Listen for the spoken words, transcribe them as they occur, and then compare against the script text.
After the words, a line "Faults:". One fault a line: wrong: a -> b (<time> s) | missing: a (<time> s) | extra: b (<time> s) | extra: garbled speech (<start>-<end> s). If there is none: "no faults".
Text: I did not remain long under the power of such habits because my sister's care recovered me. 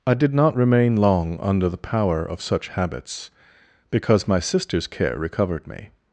I did not remain long under the power of such habits because my sister's care recovered me.
Faults:
no faults